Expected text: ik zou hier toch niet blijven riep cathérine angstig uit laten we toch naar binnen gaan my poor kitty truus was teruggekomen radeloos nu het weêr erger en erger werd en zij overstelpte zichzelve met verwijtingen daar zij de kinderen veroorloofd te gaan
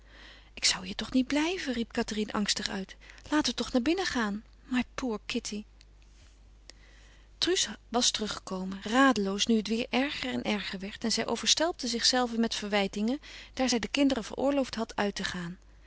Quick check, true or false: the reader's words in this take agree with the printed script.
false